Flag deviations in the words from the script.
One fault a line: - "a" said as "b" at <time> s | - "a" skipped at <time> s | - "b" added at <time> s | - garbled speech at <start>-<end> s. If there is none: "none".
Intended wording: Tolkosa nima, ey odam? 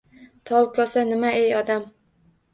none